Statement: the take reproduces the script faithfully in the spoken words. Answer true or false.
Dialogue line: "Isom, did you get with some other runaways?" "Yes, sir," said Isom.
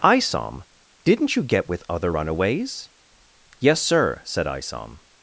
false